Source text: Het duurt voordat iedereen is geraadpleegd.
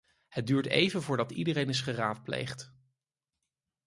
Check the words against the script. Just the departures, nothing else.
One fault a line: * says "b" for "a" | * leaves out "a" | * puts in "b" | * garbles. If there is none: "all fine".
* puts in "even"